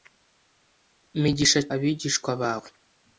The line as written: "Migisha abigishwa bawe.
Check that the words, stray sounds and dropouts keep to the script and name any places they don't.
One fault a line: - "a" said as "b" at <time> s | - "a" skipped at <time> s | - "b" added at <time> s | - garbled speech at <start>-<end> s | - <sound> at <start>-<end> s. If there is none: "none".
none